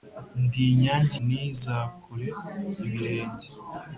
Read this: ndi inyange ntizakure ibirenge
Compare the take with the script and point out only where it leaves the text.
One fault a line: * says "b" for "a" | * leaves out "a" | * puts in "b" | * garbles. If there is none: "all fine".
all fine